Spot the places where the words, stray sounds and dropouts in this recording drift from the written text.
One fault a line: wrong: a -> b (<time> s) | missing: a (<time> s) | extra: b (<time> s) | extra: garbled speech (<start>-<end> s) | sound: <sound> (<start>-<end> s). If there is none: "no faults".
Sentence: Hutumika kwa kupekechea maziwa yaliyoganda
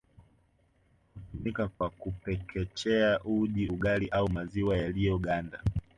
sound: dropout (1.7-1.8 s)
extra: uji ugali au (3.2 s)